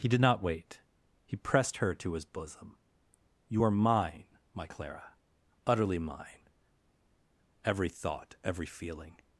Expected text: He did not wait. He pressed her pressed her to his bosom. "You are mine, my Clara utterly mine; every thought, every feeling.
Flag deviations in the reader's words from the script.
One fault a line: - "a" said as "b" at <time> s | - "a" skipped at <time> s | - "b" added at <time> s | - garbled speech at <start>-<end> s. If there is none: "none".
- "pressed her" skipped at 1.9 s